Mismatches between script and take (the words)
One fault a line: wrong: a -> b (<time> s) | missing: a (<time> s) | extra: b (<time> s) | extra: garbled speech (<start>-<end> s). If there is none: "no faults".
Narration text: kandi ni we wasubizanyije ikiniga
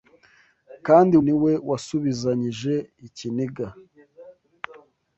no faults